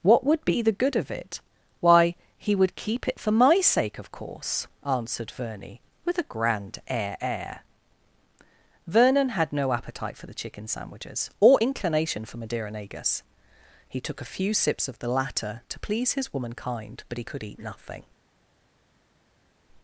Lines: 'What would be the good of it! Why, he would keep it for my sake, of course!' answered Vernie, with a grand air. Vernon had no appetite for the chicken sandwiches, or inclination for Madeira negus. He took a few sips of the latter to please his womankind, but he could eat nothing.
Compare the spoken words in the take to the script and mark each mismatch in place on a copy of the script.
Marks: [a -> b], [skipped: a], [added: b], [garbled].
'What would be the good of it! Why, he would keep it for my sake, of course!' answered Vernie, with a grand air. [added: air] Vernon had no appetite for the chicken sandwiches, or inclination for Madeira negus. He took a few sips of the latter to please his womankind, but he could eat nothing.